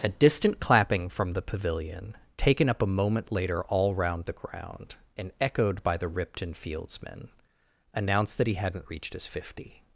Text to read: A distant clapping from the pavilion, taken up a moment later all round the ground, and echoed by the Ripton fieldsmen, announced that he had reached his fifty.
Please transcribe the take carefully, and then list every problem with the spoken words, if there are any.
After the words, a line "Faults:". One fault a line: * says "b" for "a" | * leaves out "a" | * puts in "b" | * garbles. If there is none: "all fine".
A distant clapping from the pavilion, taken up a moment later all round the ground, and echoed by the Ripton fieldsmen, announced that he hadn't reached his fifty.
Faults:
* says "hadn't" for "had"